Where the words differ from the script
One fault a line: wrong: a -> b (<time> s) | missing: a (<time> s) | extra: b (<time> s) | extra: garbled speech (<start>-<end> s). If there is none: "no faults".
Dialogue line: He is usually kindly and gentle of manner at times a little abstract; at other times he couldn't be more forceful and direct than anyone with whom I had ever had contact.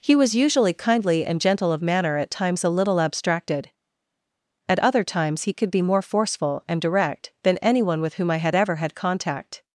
wrong: is -> was (0.1 s)
wrong: abstract -> abstracted (3.0 s)
wrong: couldn't -> could (5.5 s)